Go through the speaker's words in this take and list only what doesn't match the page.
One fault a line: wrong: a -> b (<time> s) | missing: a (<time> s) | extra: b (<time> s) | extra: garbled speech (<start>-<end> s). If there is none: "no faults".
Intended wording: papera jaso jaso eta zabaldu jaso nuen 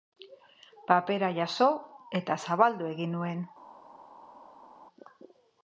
missing: jaso (1.7 s)
wrong: jaso -> egin (2.9 s)